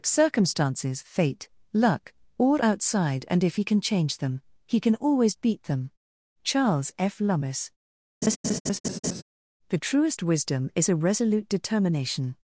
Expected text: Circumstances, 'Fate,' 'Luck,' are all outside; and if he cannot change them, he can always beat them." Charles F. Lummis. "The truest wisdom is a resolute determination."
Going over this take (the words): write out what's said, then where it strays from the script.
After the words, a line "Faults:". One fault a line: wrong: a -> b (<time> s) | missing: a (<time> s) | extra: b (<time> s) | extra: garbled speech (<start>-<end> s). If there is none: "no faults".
Circumstances, 'Fate,' 'Luck,' all outside; and if he can change them, he can always beat them." Charles F. Lummis. "The truest wisdom is a resolute determination."
Faults:
missing: are (2.1 s)
wrong: cannot -> can (3.6 s)